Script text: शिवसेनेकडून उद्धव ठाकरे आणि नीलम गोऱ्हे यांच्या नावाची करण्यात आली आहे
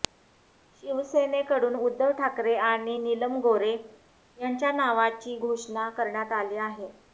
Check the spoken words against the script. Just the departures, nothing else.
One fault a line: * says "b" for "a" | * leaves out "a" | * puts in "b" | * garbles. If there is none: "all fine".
* puts in "घोषणा"